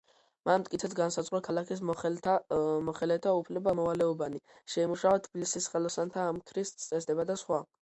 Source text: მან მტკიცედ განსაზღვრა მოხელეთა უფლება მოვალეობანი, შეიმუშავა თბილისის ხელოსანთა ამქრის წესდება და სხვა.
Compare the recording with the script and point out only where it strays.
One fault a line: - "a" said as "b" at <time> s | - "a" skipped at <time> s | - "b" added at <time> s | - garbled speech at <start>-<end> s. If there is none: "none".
- "ქალაქის" added at 1.5 s